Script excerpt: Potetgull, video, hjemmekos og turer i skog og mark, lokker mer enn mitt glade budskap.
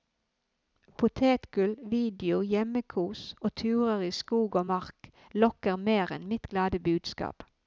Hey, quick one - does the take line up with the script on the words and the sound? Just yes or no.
yes